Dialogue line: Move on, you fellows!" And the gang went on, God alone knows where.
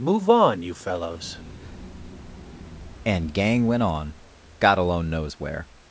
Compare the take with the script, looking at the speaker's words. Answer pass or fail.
fail